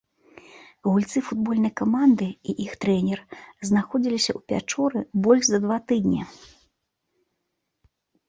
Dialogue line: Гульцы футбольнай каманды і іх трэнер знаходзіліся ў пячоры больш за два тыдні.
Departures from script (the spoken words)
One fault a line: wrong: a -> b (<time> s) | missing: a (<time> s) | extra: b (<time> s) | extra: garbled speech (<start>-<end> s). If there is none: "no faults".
no faults